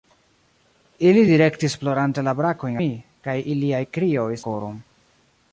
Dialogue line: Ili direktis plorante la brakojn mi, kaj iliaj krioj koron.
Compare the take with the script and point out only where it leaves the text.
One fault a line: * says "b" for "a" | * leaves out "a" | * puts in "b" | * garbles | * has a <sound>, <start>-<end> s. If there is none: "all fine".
all fine